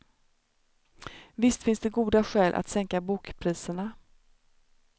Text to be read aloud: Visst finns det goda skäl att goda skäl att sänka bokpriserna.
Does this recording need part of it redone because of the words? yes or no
yes